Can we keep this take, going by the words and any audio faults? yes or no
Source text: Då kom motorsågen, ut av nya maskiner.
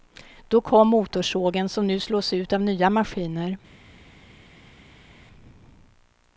no